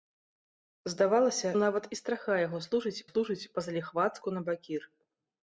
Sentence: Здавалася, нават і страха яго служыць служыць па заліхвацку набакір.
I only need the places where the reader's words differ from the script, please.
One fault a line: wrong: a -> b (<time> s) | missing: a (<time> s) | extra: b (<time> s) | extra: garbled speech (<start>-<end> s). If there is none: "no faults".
no faults